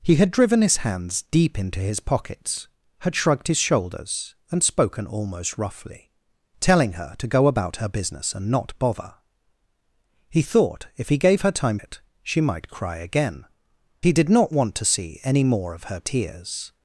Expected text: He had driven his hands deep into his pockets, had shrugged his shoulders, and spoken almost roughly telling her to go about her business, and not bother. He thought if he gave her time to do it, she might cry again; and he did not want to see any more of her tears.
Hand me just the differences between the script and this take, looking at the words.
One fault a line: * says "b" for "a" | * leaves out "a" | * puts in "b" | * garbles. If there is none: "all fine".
* leaves out "to do"
* leaves out "and"